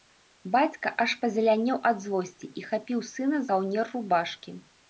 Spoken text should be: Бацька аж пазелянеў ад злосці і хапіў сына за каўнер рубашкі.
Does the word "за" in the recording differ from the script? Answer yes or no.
yes